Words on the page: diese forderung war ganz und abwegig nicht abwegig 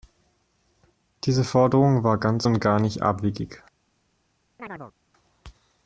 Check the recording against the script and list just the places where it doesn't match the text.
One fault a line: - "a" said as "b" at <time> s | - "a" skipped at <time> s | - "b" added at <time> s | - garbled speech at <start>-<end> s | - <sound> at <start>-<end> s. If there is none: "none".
- "abwegig" said as "gar" at 2.6 s
- chirp at 4.6-4.9 s